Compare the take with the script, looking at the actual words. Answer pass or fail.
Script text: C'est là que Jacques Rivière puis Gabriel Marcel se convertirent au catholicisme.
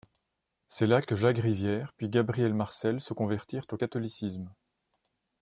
pass